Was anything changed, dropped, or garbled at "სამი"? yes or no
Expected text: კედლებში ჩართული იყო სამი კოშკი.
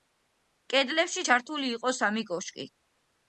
no